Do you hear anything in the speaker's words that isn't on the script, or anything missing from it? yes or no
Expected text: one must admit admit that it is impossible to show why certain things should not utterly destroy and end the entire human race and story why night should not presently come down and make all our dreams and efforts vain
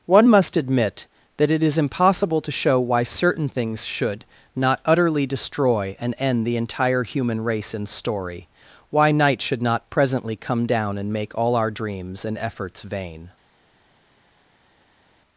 yes